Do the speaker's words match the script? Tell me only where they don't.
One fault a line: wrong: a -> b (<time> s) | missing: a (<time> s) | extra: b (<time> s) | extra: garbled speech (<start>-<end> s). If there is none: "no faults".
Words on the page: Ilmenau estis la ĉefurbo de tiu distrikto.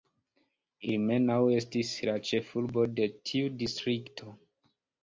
no faults